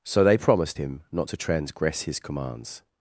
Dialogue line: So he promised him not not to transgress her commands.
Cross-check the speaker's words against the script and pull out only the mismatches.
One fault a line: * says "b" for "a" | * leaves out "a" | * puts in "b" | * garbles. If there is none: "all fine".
* says "they" for "he"
* leaves out "not"
* says "his" for "her"